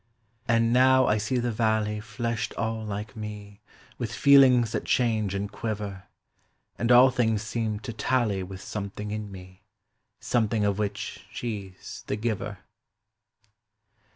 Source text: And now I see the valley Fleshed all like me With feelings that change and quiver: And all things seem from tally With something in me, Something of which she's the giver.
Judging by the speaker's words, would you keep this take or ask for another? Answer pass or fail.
fail